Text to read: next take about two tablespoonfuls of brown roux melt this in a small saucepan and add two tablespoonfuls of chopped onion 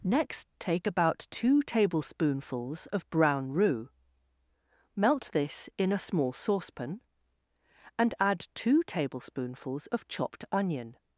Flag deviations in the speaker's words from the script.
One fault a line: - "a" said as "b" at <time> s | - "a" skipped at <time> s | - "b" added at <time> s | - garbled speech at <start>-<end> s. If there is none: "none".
none